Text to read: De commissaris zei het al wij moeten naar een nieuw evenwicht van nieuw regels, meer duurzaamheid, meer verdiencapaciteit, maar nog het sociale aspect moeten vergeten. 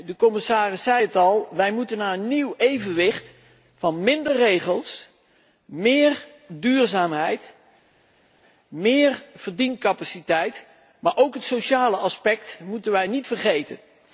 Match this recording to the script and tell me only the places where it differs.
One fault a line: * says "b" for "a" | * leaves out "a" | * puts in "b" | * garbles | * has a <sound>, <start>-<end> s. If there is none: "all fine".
* says "minder" for "nieuw"
* says "ook" for "nog"
* puts in "wij niet"